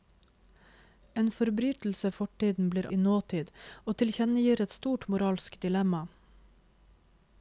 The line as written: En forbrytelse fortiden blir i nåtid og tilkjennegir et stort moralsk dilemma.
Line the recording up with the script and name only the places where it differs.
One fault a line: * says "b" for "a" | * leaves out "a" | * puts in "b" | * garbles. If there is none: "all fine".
all fine